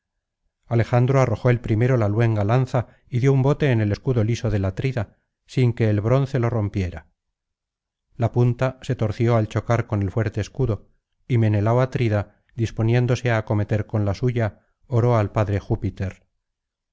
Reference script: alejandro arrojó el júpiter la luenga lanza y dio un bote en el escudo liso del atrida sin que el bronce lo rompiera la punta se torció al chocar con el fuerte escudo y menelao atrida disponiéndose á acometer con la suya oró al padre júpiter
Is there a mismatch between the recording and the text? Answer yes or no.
yes